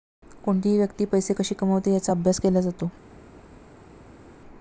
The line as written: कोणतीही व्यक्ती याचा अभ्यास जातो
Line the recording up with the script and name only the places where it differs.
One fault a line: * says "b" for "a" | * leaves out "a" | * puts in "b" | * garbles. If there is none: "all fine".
* puts in "पैसे कशी कमवते"
* puts in "केला"